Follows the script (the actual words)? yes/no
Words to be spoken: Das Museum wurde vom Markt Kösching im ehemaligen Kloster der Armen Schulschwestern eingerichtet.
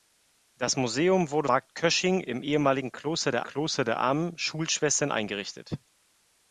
no